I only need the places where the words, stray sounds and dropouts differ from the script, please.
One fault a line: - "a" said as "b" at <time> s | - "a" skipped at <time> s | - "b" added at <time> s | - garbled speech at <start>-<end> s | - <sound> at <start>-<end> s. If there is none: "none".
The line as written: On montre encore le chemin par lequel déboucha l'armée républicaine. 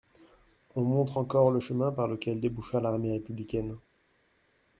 none